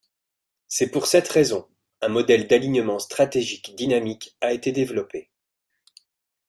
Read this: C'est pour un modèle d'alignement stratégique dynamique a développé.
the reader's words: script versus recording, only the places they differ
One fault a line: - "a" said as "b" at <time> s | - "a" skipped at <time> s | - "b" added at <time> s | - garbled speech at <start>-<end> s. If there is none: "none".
- "cette raison" added at 1.1 s
- "été" added at 4.5 s